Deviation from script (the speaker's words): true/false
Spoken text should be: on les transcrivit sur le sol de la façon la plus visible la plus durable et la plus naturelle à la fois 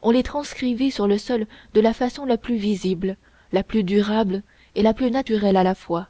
false